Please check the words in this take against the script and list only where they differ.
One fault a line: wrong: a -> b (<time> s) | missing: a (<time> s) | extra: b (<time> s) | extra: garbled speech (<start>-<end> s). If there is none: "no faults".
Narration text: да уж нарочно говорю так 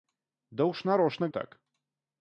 missing: говорю (1.3 s)